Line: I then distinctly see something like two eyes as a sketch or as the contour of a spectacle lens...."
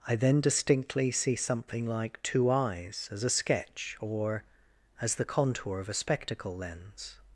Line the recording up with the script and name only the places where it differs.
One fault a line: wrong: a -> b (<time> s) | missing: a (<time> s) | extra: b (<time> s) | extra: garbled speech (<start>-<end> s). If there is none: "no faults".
no faults